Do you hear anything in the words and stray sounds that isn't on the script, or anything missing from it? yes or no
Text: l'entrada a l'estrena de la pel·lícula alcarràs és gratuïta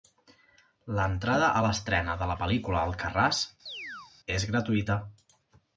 yes